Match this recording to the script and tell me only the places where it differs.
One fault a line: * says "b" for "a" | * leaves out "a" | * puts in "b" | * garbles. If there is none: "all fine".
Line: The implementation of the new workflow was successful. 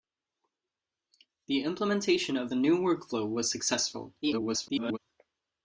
* garbles